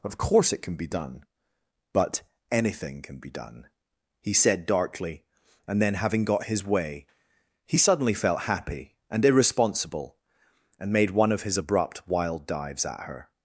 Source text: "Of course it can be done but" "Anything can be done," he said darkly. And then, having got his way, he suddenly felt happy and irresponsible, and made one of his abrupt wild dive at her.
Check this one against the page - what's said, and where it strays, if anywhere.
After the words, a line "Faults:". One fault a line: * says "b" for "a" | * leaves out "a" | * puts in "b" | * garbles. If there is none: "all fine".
"Of course it can be done but" "Anything can be done," he said darkly. And then, having got his way, he suddenly felt happy and irresponsible, and made one of his abrupt wild dives at her.
Faults:
* says "dives" for "dive"